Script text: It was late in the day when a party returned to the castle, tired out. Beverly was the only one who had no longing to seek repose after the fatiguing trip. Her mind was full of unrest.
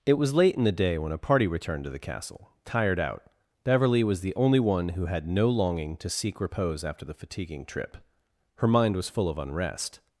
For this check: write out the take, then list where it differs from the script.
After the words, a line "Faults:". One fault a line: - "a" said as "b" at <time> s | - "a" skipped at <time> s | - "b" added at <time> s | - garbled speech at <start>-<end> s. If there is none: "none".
It was late in the day when a party returned to the castle, tired out. Beverly was the only one who had no longing to seek repose after the fatiguing trip. Her mind was full of unrest.
Faults:
none